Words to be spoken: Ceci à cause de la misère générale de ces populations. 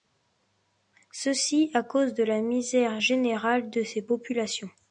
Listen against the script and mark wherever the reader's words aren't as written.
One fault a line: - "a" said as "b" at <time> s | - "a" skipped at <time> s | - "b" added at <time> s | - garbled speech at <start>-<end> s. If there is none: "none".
none